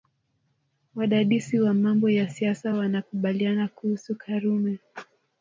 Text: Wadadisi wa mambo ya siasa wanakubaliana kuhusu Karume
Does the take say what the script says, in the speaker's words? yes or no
yes